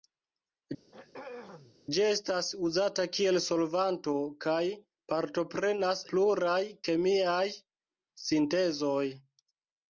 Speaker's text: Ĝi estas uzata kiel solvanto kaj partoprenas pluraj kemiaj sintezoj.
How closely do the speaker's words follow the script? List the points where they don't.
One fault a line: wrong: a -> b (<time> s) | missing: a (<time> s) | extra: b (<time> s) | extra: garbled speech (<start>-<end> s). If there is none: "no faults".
no faults